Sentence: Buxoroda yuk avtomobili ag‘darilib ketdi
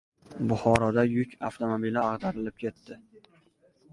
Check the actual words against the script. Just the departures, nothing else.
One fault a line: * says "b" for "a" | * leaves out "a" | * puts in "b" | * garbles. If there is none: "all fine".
all fine